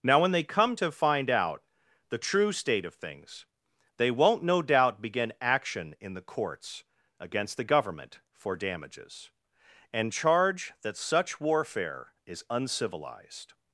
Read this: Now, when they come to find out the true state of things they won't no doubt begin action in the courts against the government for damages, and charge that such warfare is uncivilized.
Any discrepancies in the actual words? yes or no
no